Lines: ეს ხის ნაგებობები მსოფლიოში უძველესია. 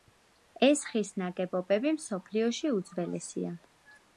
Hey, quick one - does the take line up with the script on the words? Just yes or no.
yes